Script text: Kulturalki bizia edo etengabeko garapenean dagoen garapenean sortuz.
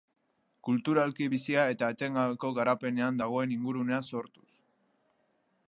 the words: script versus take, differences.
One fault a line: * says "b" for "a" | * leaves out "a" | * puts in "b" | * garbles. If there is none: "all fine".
* says "eta" for "edo"
* says "ingurunea" for "garapenean"